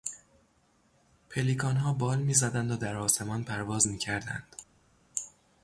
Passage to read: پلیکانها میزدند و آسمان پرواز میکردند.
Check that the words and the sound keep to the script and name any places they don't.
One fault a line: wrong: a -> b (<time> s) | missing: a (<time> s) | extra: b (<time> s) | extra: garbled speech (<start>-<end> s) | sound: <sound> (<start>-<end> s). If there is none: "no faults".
extra: بال (1.9 s)
extra: در (2.8 s)